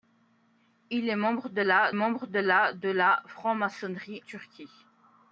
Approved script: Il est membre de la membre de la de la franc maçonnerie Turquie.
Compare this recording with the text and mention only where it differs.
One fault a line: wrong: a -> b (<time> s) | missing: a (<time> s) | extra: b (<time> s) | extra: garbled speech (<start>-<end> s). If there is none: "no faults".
no faults